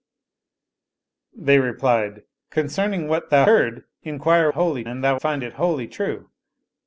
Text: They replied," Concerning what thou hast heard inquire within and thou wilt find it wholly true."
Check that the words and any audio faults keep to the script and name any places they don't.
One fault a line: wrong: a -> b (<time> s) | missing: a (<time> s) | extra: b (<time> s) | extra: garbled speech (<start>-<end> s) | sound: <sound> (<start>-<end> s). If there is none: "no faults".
missing: hast (3.5 s)
wrong: within -> wholly (4.5 s)
missing: wilt (5.2 s)